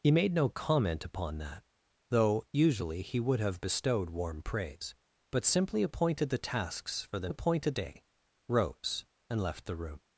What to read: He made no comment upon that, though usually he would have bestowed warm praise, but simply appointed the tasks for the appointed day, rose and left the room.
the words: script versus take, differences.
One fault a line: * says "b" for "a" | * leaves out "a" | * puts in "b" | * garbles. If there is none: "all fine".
all fine